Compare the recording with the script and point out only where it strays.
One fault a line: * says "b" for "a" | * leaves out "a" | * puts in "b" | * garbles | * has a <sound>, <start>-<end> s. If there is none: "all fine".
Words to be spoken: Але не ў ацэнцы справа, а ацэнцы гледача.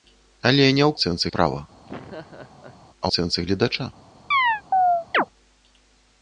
* has a laugh, 1.9-2.8 s
* has a chirp, 4.3-5.3 s